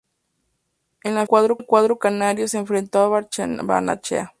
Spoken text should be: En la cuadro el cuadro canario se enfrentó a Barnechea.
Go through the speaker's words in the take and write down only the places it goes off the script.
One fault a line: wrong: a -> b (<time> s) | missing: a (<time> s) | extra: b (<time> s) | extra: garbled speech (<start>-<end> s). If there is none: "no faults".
no faults